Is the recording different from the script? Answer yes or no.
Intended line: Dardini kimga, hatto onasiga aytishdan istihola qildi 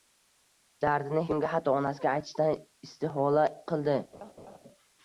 no